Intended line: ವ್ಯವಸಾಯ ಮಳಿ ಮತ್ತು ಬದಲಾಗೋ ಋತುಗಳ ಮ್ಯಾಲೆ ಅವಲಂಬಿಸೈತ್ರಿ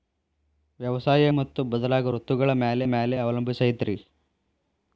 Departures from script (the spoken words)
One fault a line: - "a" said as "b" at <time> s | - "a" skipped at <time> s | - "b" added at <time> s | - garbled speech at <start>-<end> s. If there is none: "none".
- "ಮಳಿ" skipped at 1.2 s
- "ಮ್ಯಾಲೆ" added at 2.9 s